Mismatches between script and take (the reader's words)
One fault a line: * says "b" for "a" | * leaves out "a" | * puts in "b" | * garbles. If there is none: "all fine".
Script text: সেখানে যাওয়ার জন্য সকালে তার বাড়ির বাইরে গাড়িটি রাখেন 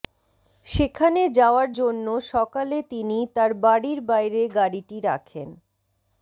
* puts in "তিনি"